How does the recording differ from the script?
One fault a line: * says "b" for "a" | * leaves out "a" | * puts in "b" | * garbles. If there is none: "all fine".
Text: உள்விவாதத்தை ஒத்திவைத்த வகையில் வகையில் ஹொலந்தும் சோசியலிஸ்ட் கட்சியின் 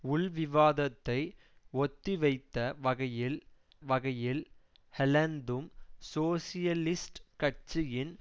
all fine